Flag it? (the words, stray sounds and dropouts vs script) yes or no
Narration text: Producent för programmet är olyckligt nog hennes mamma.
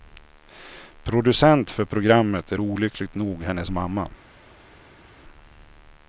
no